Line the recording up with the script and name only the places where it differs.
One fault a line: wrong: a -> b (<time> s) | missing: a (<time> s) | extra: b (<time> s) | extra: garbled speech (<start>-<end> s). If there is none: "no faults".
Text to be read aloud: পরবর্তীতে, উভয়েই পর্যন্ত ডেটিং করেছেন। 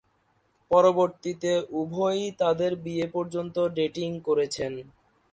extra: তাদের বিয়ে (2.4 s)